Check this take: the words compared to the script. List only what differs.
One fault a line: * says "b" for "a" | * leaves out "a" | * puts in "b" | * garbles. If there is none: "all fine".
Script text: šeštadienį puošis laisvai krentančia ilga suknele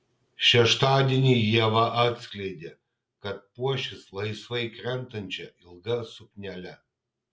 * puts in "ieva atskleidė kad"